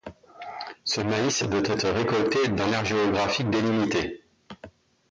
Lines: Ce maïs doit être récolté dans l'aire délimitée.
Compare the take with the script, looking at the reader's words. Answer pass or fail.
fail